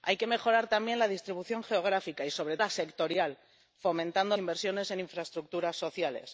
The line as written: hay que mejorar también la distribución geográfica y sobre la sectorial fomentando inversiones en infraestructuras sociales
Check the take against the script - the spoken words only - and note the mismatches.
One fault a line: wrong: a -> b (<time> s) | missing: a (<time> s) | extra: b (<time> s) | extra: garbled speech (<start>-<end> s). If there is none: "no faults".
no faults